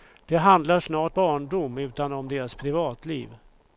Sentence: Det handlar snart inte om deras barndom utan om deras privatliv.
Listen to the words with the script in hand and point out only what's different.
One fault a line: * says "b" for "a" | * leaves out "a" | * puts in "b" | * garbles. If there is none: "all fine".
* leaves out "inte om deras"